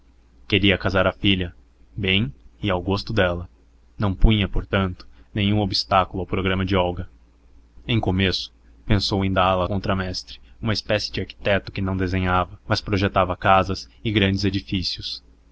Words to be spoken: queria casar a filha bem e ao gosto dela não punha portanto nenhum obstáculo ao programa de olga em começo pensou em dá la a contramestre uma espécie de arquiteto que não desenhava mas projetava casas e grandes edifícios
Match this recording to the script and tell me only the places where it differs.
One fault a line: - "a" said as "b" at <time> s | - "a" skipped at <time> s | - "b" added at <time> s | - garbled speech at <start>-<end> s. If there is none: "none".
none